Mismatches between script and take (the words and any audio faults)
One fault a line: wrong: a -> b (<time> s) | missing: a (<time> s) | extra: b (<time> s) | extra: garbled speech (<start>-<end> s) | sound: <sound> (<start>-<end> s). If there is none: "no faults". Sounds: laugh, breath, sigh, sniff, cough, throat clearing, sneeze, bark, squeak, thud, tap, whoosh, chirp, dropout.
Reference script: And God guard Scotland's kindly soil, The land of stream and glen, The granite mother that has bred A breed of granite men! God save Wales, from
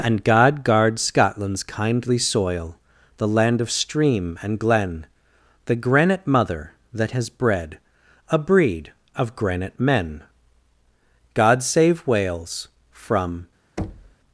sound: thud (13.8-14.2 s)